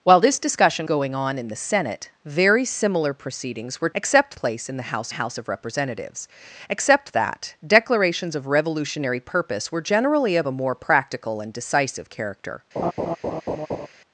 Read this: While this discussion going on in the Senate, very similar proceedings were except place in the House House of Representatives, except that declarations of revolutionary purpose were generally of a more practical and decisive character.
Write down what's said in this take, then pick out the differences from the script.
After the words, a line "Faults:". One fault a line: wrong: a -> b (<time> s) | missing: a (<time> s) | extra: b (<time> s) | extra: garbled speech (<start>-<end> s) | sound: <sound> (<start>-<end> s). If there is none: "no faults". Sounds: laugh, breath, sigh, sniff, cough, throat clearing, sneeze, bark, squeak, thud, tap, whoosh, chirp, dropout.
While this discussion going on in the Senate, very similar proceedings were except place in the House House of Representatives, except that declarations of revolutionary purpose were generally of a more practical and decisive character.
Faults:
sound: laugh (12.8-13.9 s)